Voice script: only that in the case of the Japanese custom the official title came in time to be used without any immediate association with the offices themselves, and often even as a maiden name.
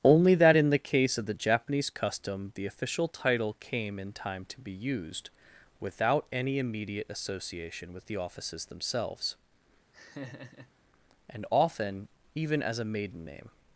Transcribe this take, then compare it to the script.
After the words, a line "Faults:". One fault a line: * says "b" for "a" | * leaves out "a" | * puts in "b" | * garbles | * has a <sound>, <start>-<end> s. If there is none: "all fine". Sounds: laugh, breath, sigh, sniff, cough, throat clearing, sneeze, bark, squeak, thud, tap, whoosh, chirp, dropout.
only that in the case of the Japanese custom the official title came in time to be used without any immediate association with the offices themselves, and often even as a maiden name.
Faults:
* has a laugh, 9.9-10.7 s